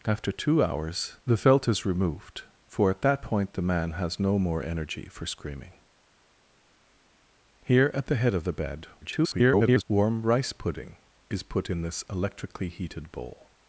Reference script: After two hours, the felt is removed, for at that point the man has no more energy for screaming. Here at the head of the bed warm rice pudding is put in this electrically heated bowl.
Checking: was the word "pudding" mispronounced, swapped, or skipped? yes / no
no